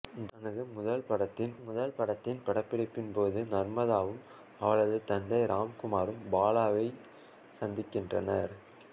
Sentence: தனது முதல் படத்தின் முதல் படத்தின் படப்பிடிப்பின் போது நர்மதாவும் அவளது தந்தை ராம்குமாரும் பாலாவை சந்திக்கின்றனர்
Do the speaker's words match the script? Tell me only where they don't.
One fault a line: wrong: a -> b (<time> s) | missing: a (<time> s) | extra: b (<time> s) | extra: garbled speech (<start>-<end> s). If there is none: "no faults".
no faults